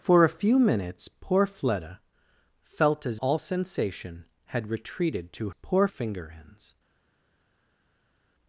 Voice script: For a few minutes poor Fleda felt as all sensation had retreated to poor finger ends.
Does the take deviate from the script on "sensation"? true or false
false